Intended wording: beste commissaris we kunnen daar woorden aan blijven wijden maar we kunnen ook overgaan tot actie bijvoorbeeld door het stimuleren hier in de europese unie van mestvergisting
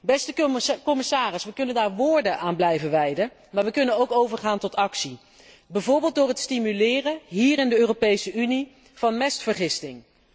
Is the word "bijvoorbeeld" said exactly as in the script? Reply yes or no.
yes